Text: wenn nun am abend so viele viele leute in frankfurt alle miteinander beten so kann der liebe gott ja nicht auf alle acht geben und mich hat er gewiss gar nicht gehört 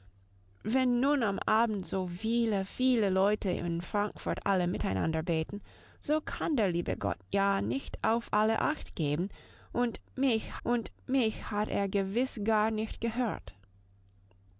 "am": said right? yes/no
yes